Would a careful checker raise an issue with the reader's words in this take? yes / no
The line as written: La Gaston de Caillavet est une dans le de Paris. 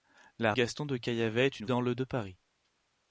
no